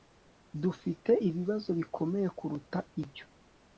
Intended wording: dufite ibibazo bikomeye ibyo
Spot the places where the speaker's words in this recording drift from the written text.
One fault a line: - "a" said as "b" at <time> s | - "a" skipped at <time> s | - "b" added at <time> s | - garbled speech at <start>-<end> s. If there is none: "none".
- "kuruta" added at 2.4 s